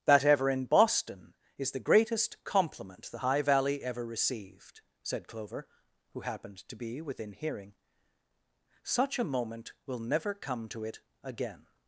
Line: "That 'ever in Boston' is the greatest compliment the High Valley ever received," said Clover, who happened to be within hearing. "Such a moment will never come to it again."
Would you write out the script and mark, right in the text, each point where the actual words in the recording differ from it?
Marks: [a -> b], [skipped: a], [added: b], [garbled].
"That 'ever in Boston' is the greatest compliment the High Valley ever received," said Clover, who happened to be within hearing. "Such a moment will never come to it again."